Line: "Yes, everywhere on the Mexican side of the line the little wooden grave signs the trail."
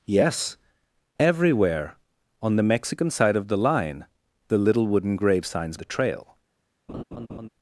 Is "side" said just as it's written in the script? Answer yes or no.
yes